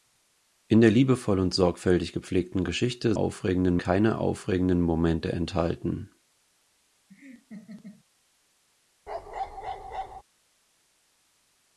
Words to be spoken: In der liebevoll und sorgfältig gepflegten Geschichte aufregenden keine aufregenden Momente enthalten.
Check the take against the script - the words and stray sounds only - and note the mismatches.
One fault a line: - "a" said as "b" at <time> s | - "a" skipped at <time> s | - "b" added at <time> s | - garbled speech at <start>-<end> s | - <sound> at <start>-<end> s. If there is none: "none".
- laugh at 7.1-8.0 s
- bark at 9.1-10.2 s